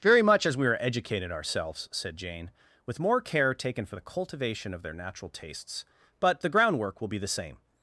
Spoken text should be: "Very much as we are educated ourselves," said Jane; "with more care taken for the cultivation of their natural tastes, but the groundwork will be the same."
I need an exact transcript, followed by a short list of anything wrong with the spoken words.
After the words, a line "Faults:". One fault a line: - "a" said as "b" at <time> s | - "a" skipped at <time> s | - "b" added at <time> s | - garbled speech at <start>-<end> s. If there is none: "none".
"Very much as we are educated ourselves," said Jane; "with more care taken for the cultivation of their natural tastes, but the groundwork will be the same."
Faults:
none